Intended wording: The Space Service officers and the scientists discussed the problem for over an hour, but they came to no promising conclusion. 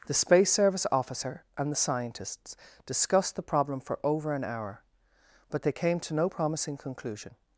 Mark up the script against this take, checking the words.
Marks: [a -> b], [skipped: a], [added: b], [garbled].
The Space Service [officers -> officer] and the scientists discussed the problem for over an hour, but they came to no promising conclusion.